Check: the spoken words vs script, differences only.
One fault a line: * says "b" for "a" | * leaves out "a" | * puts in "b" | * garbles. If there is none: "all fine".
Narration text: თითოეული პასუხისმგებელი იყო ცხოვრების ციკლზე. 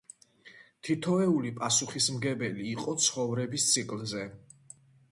all fine